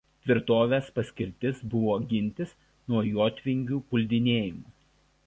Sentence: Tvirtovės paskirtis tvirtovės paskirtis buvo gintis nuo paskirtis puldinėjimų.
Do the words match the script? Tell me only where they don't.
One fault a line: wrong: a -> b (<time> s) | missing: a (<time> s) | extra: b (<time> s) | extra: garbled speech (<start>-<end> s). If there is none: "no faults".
missing: tvirtovės paskirtis (1.6 s)
wrong: paskirtis -> jotvingių (3.1 s)